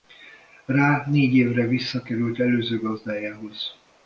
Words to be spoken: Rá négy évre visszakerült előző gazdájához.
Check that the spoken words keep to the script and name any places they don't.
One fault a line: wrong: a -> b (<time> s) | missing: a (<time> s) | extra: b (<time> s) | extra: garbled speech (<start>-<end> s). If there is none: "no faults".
no faults